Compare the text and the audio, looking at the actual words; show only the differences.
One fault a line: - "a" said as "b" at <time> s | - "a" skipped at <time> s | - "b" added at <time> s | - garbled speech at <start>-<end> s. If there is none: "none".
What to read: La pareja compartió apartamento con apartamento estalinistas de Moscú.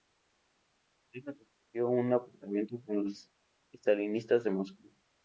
- "un" added at 1.9 s
- "apartamento" said as "los" at 3.0 s